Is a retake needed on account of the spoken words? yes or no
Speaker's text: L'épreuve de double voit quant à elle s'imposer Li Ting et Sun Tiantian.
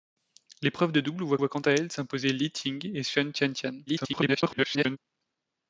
yes